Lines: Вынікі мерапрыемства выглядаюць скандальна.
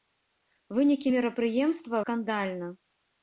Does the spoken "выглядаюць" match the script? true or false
false